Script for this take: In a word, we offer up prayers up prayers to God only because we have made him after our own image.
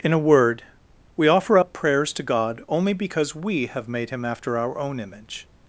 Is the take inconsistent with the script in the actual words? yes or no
yes